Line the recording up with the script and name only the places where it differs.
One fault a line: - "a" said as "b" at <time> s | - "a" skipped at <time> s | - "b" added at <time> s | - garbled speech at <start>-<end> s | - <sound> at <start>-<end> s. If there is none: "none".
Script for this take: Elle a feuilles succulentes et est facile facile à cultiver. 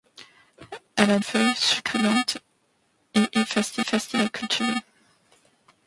none